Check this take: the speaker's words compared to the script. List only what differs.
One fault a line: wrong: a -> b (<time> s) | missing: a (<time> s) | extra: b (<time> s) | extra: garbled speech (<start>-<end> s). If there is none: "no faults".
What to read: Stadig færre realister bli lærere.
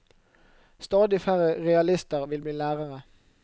extra: vil (2.2 s)